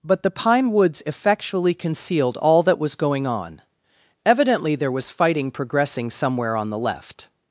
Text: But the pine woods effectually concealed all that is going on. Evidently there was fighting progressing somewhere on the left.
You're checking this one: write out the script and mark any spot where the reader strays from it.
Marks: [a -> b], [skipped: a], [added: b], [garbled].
But the pine woods effectually concealed all that [is -> was] going on. Evidently there was fighting progressing somewhere on the left.